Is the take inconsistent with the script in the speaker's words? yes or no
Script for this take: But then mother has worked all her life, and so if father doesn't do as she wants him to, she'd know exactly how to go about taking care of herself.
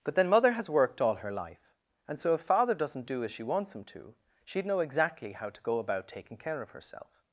no